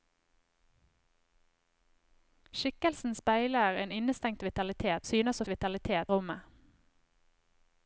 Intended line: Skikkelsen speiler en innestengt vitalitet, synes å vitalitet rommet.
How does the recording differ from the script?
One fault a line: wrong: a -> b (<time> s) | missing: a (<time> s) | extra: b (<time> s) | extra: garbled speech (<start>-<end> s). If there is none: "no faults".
no faults